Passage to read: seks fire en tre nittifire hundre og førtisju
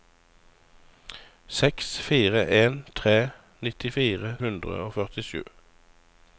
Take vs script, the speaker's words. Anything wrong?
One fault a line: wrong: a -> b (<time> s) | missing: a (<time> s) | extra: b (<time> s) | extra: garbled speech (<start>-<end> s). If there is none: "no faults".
no faults